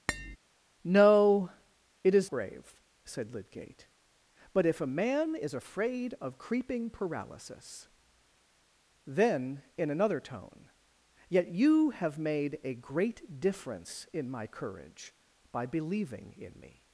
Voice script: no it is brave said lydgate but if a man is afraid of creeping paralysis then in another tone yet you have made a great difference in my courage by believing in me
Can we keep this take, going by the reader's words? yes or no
yes